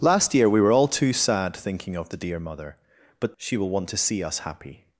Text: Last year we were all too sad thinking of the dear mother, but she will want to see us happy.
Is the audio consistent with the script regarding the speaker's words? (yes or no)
yes